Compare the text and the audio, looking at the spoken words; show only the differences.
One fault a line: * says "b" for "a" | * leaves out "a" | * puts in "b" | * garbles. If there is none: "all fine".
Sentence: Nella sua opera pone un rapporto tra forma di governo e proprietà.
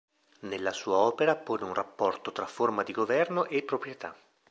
all fine